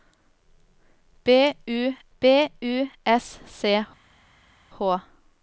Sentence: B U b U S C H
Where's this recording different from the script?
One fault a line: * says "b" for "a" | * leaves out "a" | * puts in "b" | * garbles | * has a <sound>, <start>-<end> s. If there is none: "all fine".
all fine